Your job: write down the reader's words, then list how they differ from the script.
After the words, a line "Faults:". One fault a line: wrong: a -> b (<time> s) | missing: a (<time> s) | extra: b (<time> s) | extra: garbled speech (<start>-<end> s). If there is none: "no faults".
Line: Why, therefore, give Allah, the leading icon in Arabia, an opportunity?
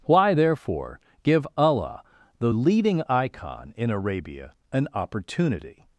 Why, therefore, give Allah, the leading icon in Arabia, an opportunity?
Faults:
no faults